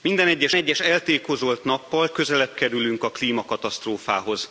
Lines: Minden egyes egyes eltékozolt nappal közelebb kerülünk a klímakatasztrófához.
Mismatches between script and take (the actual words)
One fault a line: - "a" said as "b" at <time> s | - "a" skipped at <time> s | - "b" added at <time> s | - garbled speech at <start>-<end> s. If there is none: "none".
none